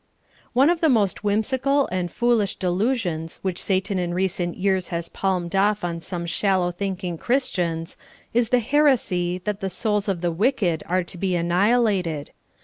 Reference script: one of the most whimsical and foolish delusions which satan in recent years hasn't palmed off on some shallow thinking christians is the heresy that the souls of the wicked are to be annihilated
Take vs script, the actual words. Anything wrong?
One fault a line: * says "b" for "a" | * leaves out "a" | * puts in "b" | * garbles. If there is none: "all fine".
* says "has" for "hasn't"